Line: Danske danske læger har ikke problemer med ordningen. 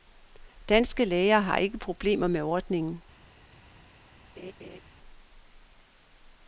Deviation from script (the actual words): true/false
true